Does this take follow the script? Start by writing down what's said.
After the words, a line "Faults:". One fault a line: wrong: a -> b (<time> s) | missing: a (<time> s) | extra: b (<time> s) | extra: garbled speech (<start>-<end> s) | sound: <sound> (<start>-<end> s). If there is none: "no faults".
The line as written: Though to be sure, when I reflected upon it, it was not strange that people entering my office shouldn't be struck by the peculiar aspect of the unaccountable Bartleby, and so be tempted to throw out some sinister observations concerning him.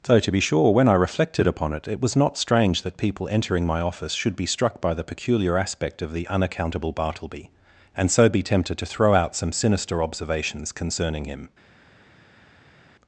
Though to be sure, when I reflected upon it, it was not strange that people entering my office should be struck by the peculiar aspect of the unaccountable Bartleby, and so be tempted to throw out some sinister observations concerning him.
Faults:
wrong: shouldn't -> should (4.1 s)